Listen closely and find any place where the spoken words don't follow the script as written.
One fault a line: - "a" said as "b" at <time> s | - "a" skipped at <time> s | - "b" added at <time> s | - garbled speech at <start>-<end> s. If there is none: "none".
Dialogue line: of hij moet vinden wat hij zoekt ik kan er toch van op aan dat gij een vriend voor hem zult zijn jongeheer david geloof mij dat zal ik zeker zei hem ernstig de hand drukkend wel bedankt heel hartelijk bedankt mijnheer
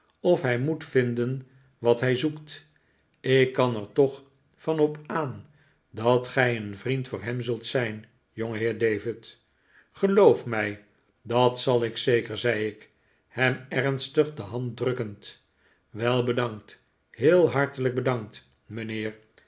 - "ik" added at 12.7 s